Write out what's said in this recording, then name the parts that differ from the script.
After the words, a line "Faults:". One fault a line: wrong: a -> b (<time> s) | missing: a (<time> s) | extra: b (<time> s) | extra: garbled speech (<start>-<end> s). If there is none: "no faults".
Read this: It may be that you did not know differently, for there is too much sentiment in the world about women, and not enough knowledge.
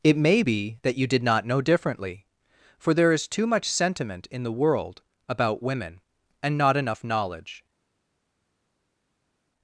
It may be that you did not know differently, for there is too much sentiment in the world about women, and not enough knowledge.
Faults:
no faults